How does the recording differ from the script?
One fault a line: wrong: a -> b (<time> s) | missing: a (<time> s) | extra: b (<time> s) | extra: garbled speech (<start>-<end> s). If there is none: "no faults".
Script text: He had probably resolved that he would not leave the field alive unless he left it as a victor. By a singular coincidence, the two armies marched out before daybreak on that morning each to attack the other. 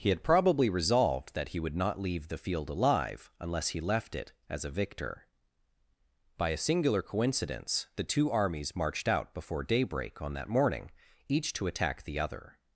no faults